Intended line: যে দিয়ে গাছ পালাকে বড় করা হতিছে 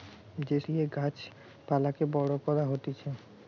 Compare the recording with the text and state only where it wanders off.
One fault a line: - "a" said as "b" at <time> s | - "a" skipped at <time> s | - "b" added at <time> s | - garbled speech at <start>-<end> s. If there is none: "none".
none